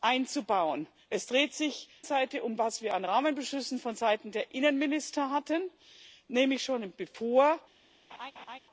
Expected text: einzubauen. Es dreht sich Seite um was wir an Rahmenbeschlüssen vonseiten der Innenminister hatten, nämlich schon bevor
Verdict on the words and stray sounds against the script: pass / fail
fail